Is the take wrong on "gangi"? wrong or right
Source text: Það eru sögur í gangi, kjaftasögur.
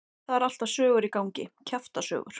right